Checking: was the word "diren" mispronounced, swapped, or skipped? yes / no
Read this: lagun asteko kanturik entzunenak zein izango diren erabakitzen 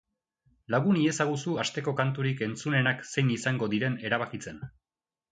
no